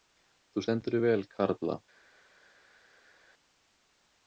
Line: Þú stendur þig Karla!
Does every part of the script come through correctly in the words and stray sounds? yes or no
no